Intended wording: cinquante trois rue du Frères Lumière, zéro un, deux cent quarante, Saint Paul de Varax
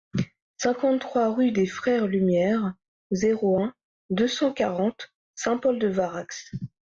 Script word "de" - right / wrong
right